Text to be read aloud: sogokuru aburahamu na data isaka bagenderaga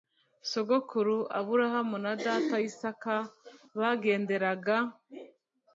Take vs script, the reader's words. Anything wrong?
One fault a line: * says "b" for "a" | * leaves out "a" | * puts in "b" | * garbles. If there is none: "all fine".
all fine